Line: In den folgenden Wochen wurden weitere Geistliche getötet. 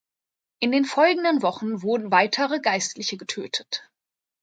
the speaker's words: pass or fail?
pass